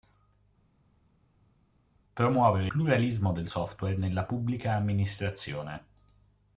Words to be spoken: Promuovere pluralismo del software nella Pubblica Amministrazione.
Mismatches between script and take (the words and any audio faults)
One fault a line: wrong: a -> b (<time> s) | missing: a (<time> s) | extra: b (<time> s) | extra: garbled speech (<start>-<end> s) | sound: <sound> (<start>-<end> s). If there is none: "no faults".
no faults